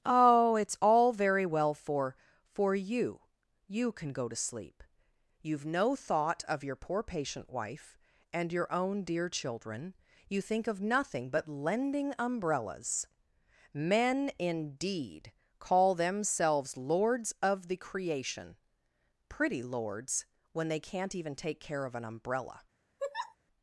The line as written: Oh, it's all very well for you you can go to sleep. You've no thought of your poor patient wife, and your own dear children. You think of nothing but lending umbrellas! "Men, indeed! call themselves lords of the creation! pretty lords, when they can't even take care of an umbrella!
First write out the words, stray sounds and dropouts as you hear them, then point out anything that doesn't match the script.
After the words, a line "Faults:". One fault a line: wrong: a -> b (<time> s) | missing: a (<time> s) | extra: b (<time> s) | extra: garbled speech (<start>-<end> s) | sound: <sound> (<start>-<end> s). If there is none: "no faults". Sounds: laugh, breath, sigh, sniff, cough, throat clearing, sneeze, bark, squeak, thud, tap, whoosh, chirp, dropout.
Oh, it's all very well for for you you can go to sleep. You've no thought of your poor patient wife, and your own dear children. You think of nothing but lending umbrellas! "Men, indeed! call themselves lords of the creation! pretty lords, when they can't even take care of an umbrella!
Faults:
extra: for (2.4 s)
sound: laugh (23.0-23.4 s)